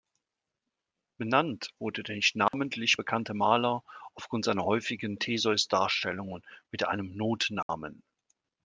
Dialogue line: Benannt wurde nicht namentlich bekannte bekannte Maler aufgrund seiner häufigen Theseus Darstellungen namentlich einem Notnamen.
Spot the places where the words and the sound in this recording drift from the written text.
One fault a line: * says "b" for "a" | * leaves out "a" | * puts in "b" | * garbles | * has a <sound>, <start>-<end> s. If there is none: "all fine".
* puts in "der"
* has a dropout, 2.5-2.5 s
* leaves out "bekannte"
* says "mit" for "namentlich"
* has a dropout, 7.6-7.7 s